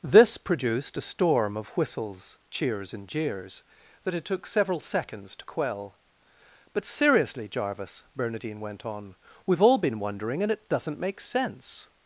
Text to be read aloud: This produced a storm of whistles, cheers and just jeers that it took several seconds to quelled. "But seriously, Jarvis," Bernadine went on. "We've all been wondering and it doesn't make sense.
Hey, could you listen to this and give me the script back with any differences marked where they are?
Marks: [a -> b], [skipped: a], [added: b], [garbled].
This produced a storm of whistles, cheers and [skipped: just] jeers that it took several seconds to [quelled. -> quell] "But seriously, Jarvis," Bernadine went on. "We've all been wondering and it doesn't make sense.